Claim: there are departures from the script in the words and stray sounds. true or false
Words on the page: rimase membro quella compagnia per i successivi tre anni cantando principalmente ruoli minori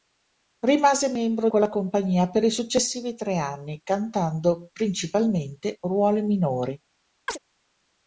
true